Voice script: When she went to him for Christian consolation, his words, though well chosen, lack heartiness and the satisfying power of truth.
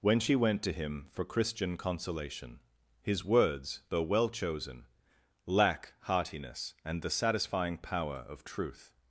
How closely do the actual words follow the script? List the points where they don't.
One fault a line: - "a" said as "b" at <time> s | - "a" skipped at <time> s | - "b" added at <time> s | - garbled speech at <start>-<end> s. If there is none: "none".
none